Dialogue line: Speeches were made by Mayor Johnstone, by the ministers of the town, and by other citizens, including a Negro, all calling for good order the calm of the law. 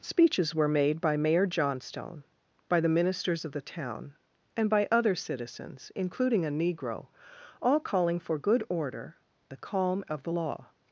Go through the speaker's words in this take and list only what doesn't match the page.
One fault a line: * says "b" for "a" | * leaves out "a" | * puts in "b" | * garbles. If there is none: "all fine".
all fine